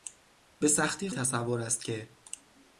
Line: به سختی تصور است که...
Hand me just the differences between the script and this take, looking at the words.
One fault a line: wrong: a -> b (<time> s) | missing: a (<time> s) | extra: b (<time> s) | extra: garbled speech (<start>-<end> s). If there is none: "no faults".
no faults